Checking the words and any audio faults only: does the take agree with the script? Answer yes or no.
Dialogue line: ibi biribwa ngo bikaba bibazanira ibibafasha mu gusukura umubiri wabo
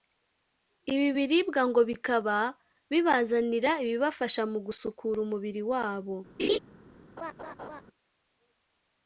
no